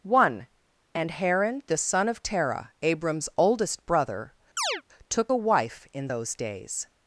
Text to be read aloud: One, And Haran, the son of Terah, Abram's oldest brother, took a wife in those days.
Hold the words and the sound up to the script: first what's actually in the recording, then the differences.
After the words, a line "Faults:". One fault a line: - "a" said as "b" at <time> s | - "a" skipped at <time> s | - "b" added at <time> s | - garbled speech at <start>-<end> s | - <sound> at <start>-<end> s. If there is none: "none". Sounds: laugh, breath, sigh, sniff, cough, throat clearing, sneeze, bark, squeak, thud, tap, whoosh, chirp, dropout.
One, And Haran, the son of Terah, Abram's oldest brother, took a wife in those days.
Faults:
- chirp at 4.6-4.8 s